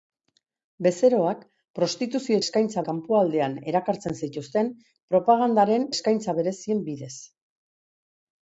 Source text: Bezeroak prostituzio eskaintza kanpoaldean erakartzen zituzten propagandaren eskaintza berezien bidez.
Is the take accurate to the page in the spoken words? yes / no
yes